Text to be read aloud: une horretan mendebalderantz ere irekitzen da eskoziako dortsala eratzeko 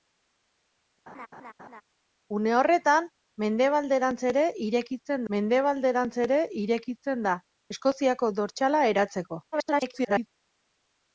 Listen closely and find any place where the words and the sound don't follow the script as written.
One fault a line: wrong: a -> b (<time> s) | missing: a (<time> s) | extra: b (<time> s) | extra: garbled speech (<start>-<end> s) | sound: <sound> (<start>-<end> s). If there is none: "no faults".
sound: laugh (1.1-1.8 s)
extra: mendebalderantz ere irekitzen (5.4 s)
extra: garbled speech (9.5-10.3 s)